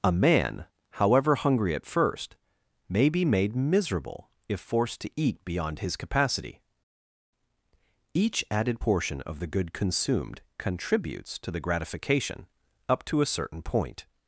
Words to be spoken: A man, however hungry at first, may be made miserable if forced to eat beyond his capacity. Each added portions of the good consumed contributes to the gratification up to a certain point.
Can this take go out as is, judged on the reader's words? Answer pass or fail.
fail